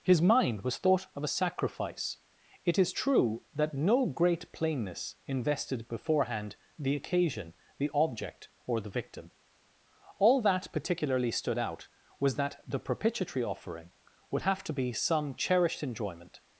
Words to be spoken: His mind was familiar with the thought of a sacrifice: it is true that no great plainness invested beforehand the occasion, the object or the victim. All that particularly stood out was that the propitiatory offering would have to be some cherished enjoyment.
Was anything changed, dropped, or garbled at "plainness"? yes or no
no